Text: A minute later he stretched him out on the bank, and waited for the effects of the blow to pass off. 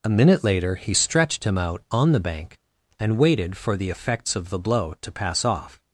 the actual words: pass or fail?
pass